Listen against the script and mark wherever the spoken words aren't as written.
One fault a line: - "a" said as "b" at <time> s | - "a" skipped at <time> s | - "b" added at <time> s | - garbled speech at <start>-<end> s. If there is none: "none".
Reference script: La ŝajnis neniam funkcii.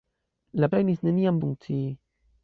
none